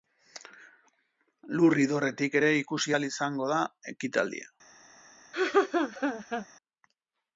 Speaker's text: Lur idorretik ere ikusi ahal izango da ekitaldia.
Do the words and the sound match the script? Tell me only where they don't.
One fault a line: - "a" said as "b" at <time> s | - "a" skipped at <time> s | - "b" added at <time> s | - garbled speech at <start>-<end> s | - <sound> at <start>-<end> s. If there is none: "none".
- laugh at 5.3-6.5 s